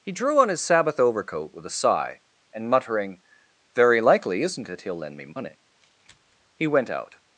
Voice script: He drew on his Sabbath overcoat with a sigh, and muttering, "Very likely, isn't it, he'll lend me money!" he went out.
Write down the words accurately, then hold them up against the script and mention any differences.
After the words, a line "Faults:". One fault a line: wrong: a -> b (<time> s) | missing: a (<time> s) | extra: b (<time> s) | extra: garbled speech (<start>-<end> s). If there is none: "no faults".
He drew on his Sabbath overcoat with a sigh, and muttering, "Very likely, isn't it, he'll lend me money!" he went out.
Faults:
no faults